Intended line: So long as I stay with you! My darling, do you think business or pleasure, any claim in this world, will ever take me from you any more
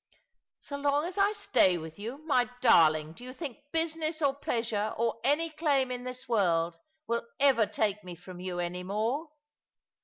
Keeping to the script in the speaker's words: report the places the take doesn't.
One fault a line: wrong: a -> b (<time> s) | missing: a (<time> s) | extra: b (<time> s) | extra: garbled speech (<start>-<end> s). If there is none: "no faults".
extra: or (5.0 s)